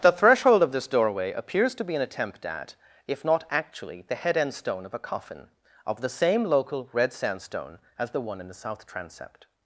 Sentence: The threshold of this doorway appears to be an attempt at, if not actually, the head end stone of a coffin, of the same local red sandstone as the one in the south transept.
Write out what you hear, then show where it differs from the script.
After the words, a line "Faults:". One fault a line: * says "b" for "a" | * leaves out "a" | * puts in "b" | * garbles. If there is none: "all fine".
The threshold of this doorway appears to be an attempt at, if not actually, the head end stone of a coffin, of the same local red sandstone as the one in the south transept.
Faults:
all fine